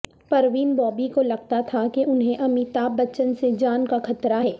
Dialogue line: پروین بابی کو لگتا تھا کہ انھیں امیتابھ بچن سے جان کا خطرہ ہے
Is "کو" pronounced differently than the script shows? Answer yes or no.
no